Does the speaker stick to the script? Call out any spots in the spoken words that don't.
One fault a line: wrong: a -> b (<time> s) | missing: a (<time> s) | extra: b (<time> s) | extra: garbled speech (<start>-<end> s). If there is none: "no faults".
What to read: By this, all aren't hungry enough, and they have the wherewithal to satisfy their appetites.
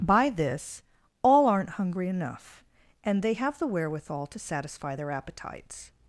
no faults